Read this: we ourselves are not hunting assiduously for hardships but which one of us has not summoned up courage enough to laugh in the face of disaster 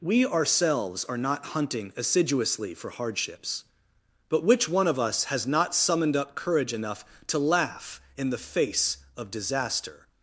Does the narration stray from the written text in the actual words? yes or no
no